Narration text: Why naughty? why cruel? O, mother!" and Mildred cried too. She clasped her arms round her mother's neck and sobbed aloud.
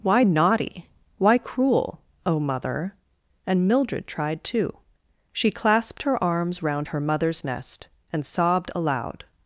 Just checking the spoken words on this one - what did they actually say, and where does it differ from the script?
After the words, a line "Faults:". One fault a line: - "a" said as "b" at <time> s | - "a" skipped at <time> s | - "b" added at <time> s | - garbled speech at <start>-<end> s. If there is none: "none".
Why naughty? why cruel? O, mother!" and Mildred tried too. She clasped her arms round her mother's nest and sobbed aloud.
Faults:
- "cried" said as "tried" at 4.1 s
- "neck" said as "nest" at 7.4 s